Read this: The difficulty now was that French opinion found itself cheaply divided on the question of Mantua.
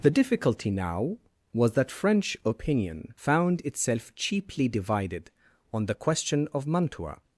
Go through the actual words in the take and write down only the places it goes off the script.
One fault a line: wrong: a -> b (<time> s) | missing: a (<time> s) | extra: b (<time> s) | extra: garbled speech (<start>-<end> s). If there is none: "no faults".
no faults